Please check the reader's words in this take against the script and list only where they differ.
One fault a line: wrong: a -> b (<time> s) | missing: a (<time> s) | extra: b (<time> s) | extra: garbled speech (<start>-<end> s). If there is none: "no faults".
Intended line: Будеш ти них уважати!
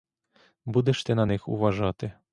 extra: на (1.1 s)